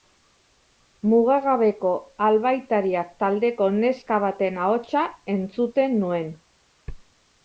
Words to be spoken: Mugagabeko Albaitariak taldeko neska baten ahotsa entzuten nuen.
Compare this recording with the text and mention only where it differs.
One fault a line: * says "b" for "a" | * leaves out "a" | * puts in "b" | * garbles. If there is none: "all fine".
all fine